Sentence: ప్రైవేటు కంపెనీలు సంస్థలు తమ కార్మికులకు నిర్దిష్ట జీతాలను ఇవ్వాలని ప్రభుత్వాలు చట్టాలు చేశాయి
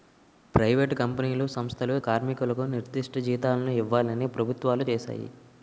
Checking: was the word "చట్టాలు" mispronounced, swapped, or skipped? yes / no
yes